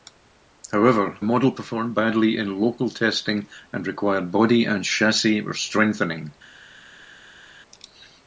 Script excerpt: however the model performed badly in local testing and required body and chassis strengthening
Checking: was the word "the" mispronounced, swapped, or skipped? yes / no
yes